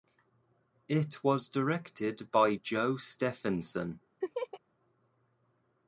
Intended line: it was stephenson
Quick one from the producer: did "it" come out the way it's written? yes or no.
yes